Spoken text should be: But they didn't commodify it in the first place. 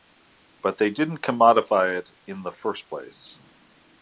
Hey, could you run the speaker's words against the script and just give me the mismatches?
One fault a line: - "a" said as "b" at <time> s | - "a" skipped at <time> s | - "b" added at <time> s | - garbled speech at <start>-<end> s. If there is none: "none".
none